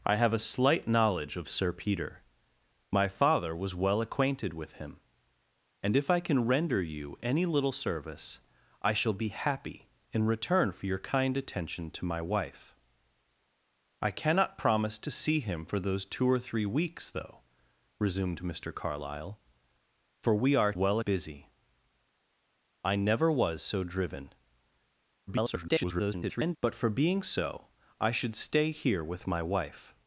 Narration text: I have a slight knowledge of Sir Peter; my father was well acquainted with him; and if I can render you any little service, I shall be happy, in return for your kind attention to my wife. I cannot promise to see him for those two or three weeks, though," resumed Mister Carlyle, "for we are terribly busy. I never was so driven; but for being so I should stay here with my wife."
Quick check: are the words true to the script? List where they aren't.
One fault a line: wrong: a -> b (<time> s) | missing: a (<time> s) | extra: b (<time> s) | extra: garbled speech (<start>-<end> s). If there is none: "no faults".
wrong: terribly -> well (20.7 s)
extra: garbled speech (25.3-26.6 s)